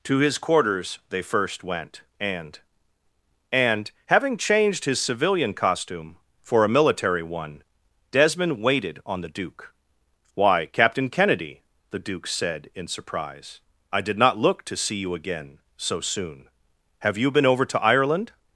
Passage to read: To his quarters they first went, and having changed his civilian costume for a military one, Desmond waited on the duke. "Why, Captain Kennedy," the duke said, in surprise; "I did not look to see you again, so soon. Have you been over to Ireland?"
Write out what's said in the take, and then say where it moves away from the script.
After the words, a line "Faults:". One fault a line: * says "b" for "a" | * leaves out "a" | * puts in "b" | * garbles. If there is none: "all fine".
To his quarters they first went, and and having changed his civilian costume for a military one, Desmond waited on the duke. "Why, Captain Kennedy," the duke said, in surprise; "I did not look to see you again, so soon. Have you been over to Ireland?"
Faults:
* puts in "and"